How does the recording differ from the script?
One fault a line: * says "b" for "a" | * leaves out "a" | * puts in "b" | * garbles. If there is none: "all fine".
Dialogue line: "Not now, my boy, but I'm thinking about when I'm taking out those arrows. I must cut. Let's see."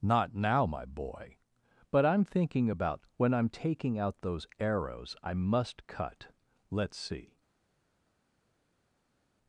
all fine